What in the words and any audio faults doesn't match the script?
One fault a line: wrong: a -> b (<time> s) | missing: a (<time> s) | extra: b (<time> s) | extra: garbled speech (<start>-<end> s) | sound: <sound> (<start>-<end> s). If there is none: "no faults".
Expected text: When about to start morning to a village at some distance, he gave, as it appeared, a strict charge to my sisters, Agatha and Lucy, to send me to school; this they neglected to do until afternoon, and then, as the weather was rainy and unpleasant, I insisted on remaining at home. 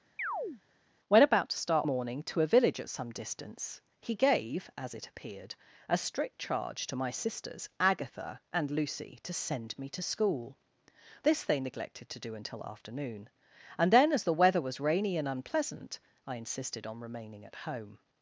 sound: chirp (0.2-0.6 s)